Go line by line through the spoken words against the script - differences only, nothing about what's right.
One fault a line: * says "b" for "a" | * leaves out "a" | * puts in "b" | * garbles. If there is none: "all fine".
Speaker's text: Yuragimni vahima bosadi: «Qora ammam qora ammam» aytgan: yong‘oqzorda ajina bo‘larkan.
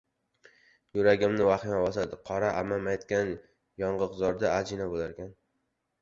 * leaves out "qora ammam"